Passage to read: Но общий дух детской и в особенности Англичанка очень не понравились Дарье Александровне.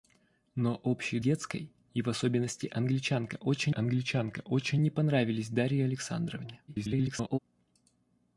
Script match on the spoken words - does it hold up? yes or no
no